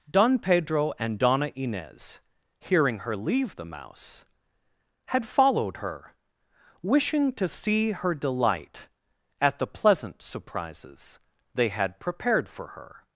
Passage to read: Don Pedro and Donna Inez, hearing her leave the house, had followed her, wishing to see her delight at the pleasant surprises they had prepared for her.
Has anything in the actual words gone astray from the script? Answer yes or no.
yes